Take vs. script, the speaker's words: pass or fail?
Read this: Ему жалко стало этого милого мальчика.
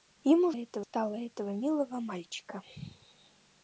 fail